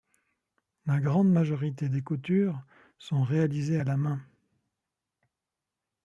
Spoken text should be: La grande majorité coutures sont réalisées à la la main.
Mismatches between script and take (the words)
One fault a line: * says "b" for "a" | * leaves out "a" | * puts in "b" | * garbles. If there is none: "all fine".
* puts in "des"
* leaves out "la"